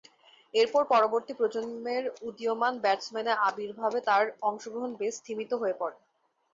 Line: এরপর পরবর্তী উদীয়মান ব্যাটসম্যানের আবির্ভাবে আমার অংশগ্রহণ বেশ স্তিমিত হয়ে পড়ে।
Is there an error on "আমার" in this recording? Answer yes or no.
yes